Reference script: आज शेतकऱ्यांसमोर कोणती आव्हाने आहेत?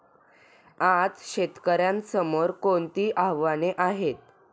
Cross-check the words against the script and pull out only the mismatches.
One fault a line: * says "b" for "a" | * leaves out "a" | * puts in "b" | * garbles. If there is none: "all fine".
all fine